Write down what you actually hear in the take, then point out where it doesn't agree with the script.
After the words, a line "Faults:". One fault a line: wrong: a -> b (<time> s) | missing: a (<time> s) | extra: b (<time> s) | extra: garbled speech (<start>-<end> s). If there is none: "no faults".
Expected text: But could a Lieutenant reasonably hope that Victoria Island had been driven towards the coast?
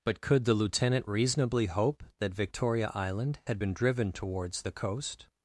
But could the Lieutenant reasonably hope that Victoria Island had been driven towards the coast?
Faults:
wrong: a -> the (0.5 s)